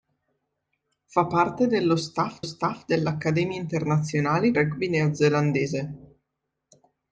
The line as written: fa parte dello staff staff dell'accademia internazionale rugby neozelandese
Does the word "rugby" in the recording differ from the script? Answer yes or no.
no